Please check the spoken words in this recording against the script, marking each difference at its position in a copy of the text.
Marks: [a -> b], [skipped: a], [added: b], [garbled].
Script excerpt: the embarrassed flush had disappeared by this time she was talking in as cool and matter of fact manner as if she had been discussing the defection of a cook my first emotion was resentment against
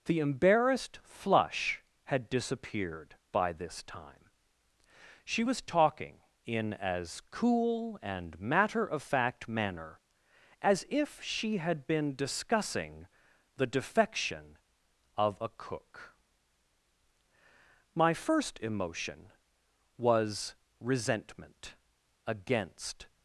the embarrassed flush had disappeared by this time she was talking in as cool and matter of fact manner as if she had been discussing the defection of a cook my first emotion was resentment against